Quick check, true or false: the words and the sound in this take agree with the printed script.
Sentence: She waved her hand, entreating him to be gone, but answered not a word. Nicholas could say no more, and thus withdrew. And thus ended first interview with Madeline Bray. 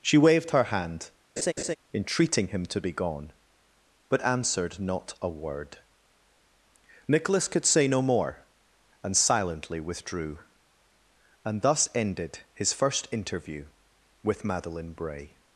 false